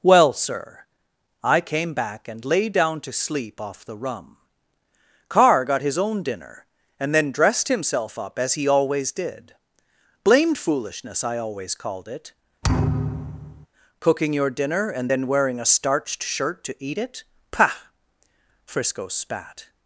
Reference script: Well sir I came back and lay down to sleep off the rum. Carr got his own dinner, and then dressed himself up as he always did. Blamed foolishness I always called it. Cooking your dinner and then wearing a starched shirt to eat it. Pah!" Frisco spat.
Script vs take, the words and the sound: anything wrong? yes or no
yes